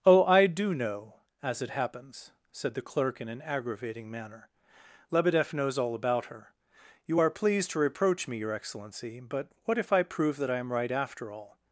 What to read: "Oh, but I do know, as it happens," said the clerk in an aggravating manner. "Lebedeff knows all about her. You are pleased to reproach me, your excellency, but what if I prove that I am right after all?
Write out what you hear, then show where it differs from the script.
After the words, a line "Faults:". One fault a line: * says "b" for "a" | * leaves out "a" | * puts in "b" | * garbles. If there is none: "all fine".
"Oh, I do know, as it happens," said the clerk in an aggravating manner. "Lebedeff knows all about her. You are pleased to reproach me, your excellency, but what if I prove that I am right after all?
Faults:
* leaves out "but"